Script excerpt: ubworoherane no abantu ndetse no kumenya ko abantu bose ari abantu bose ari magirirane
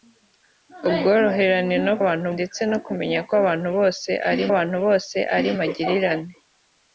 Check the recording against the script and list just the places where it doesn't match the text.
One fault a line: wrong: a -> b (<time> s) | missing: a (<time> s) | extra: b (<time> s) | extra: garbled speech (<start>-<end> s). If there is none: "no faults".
no faults